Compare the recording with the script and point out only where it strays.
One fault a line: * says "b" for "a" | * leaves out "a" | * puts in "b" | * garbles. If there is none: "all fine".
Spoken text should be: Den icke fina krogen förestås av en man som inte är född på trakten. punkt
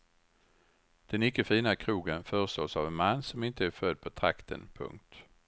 all fine